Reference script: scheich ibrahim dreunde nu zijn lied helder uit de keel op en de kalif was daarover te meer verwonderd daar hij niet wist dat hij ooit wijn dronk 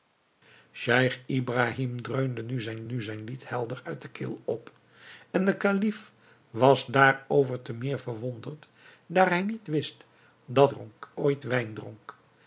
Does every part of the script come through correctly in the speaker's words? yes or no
no